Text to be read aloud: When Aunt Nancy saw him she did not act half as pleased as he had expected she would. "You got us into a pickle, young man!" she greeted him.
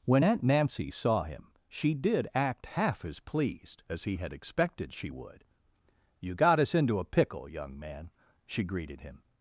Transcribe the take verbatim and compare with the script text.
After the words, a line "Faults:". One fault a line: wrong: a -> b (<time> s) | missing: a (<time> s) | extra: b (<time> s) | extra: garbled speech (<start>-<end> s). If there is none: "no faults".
When Aunt Nancy saw him she did act half as pleased as he had expected she would. "You got us into a pickle, young man!" she greeted him.
Faults:
missing: not (2.3 s)